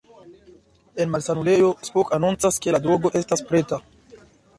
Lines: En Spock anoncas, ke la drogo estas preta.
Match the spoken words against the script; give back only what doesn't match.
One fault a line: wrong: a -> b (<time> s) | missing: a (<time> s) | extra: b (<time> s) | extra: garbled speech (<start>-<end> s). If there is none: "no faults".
extra: malsanulejo (1.1 s)